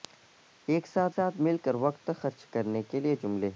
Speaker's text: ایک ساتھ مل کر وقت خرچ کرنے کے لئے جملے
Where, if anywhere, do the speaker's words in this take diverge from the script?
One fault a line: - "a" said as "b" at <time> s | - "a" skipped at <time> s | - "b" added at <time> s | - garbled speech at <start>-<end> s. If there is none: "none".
- "ساتھ" added at 1.1 s